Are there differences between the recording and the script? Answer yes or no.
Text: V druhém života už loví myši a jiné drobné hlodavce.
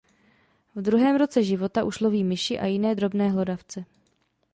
yes